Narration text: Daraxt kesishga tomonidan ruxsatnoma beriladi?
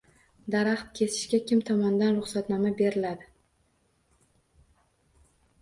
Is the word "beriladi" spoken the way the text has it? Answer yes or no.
yes